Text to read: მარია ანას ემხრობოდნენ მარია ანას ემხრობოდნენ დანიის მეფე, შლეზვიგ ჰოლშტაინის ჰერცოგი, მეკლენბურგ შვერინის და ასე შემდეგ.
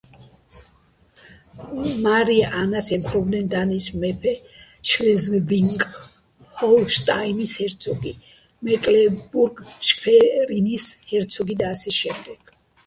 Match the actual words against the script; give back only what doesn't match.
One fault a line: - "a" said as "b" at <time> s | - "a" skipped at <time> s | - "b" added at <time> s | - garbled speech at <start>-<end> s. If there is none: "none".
- "მარია ანას ემხრობოდნენ" skipped at 3.5 s
- "ჰერცოგი" added at 11.1 s